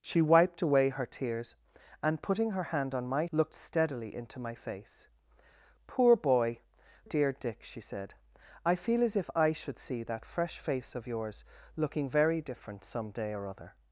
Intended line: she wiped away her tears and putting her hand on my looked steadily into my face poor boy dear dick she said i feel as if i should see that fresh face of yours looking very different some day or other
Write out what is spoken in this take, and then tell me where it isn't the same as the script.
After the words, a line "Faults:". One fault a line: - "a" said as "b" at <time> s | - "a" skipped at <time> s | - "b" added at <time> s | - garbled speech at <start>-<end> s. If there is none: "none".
she wiped away her tears and putting her hand on my looked steadily into my face poor boy dear dick she said i feel as if i should see that fresh face of yours looking very different some day or other
Faults:
none